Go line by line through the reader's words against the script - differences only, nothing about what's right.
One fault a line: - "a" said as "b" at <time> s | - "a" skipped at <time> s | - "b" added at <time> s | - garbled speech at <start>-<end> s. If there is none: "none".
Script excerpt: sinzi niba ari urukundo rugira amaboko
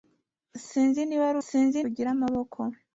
- "urukundo" said as "sinzi" at 1.4 s